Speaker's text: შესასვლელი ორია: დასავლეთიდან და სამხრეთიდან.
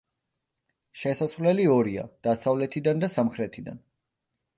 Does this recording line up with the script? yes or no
yes